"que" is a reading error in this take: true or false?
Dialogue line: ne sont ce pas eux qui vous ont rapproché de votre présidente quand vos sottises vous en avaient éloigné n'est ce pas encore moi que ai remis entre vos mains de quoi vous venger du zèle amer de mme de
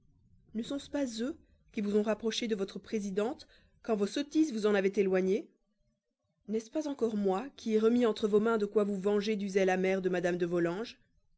true